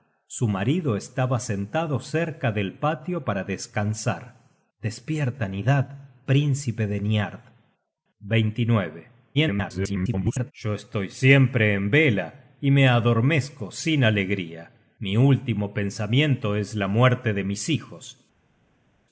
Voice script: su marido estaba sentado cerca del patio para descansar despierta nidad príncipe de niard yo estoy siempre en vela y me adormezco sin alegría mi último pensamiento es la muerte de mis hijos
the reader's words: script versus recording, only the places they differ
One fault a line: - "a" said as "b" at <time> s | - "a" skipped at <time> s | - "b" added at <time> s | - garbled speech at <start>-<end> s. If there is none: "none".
- garbled speech at 9.3-10.5 s